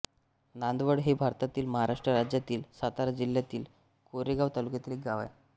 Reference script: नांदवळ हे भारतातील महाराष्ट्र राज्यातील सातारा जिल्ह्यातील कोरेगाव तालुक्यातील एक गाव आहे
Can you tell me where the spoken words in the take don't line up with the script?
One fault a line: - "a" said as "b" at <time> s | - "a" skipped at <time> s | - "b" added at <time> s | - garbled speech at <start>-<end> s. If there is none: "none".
none